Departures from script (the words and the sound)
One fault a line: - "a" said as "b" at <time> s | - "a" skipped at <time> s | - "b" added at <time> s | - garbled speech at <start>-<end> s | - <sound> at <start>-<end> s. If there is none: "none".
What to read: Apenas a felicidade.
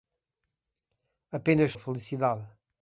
none